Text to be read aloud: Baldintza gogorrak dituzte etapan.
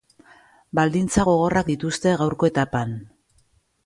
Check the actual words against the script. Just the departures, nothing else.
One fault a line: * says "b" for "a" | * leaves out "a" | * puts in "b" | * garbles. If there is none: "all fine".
* puts in "gaurko"